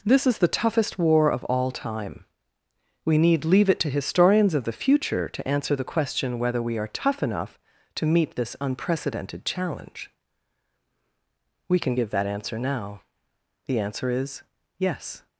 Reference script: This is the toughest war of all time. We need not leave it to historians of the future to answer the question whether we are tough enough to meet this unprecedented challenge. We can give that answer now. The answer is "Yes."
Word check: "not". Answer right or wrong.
wrong